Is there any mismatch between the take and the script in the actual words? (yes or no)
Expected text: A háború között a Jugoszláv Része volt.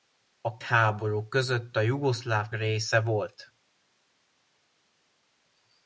no